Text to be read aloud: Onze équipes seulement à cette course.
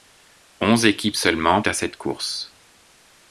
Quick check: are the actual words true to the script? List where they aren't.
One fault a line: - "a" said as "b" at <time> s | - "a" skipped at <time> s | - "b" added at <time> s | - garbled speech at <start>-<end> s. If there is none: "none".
none